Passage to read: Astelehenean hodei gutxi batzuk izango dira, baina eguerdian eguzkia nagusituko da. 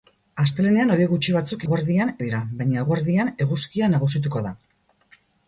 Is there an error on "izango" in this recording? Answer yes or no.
yes